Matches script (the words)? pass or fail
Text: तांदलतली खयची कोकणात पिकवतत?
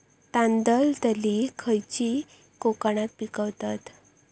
pass